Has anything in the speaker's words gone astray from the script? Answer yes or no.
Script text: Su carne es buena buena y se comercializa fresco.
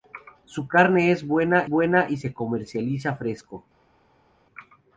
no